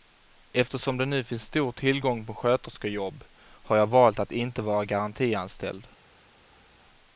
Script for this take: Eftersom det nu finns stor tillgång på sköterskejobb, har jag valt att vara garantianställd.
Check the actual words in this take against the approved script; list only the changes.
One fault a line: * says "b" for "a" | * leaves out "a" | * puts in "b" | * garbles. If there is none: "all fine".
* puts in "inte"